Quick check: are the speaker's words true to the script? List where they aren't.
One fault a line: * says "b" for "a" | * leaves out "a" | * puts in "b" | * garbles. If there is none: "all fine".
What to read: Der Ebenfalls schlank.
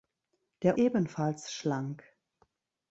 all fine